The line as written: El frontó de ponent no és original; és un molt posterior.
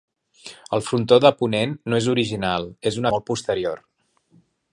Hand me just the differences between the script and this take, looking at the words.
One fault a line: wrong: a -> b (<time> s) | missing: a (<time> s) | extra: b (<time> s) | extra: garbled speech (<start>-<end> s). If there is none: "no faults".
no faults